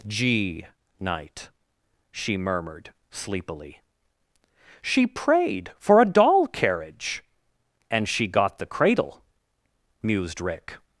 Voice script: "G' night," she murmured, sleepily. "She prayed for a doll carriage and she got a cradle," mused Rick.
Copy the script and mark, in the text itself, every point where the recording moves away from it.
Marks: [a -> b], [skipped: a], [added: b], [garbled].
"G' night," she murmured, sleepily. "She prayed for a doll carriage and she got [a -> the] cradle," mused Rick.